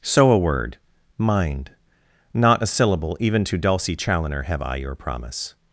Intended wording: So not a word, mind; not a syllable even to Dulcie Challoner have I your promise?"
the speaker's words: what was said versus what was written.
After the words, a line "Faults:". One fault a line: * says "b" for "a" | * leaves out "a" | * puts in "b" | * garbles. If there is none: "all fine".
So a word, mind; not a syllable even to Dulcie Challoner have I your promise?"
Faults:
* leaves out "not"